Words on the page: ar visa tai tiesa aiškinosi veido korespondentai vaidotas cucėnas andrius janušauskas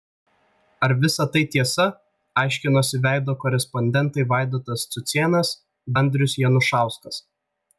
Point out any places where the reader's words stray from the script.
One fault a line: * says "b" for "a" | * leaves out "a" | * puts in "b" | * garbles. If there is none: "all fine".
all fine